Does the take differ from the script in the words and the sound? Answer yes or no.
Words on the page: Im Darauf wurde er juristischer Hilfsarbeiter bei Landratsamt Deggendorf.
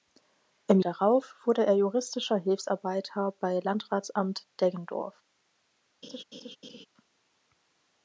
yes